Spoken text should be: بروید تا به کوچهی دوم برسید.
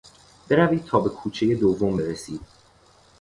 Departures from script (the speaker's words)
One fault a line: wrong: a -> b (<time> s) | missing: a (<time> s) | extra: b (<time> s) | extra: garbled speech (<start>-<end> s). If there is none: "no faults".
no faults